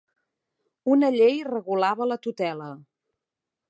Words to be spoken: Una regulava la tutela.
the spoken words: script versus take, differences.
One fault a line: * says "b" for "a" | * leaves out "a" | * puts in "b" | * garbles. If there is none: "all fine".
* puts in "llei"